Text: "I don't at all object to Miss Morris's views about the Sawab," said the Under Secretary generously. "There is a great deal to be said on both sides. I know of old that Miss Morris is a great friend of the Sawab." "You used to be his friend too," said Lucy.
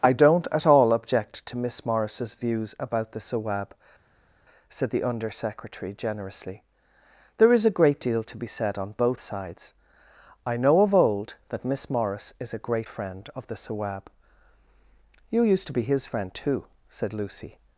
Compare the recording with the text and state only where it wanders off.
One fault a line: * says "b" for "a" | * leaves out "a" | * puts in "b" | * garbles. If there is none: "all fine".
all fine